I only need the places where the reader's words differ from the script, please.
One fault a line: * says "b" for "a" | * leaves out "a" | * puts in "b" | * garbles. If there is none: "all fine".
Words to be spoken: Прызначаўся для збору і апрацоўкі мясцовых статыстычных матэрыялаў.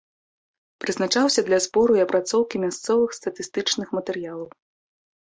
all fine